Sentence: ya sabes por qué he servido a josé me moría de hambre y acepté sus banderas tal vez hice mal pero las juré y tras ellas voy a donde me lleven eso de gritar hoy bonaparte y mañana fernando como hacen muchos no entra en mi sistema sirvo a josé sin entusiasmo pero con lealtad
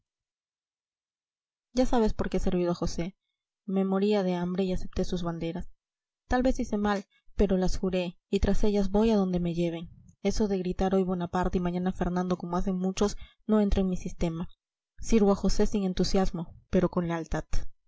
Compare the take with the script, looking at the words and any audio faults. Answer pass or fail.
pass